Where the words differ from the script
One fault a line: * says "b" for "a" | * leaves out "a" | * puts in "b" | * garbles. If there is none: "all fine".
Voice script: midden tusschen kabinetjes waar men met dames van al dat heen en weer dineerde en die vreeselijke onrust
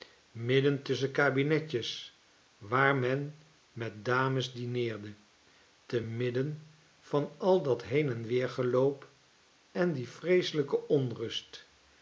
* puts in "dineerde te midden"
* says "geloop" for "dineerde"